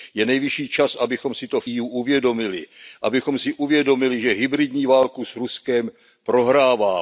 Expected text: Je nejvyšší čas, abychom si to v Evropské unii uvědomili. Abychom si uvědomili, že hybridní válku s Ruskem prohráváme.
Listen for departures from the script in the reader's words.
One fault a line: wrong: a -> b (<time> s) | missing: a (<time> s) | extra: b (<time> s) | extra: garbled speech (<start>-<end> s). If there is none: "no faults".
missing: Evropské (1.6 s)